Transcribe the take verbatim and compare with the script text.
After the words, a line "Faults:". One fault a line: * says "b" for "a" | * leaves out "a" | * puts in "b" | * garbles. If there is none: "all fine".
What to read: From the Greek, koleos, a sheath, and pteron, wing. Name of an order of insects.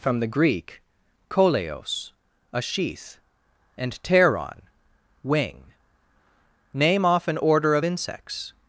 From the Greek, koleos, a sheath, and pteron, wing. Name off an order of insects.
Faults:
* says "off" for "of"